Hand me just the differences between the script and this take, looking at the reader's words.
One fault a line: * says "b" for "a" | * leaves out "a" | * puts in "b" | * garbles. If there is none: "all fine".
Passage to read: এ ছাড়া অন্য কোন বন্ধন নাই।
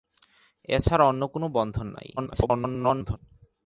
* garbles